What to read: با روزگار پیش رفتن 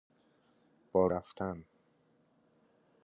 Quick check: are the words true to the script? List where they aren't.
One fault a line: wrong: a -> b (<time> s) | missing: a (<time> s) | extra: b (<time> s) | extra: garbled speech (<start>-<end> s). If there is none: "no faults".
missing: روزگار پیش (1.1 s)